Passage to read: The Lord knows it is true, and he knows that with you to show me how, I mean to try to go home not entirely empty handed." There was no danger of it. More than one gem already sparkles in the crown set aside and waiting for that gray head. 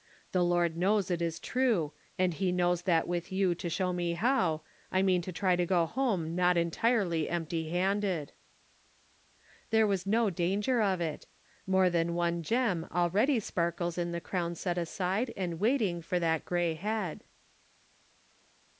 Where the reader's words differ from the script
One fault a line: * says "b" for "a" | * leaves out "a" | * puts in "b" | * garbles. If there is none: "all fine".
all fine